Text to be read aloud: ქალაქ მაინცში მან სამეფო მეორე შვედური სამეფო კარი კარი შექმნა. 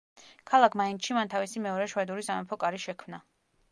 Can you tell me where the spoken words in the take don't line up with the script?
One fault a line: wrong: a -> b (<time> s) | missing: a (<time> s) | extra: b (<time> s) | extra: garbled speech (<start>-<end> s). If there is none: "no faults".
wrong: სამეფო -> თავისი (1.3 s)
missing: კარი (2.8 s)